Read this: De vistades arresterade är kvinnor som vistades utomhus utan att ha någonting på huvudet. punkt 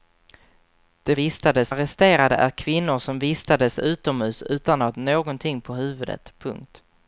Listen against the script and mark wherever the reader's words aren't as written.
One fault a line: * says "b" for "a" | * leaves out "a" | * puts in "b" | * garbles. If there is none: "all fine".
all fine